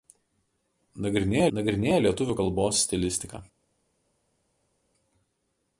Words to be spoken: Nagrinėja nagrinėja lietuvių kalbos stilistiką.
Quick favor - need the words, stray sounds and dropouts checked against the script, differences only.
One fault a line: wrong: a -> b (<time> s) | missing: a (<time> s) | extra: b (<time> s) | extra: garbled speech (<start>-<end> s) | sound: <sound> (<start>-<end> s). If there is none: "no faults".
no faults